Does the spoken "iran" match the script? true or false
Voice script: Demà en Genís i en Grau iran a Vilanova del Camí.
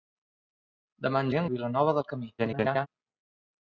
false